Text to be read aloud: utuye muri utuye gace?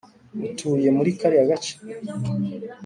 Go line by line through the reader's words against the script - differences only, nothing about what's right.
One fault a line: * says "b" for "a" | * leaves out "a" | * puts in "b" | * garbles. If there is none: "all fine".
* says "kariya" for "utuye"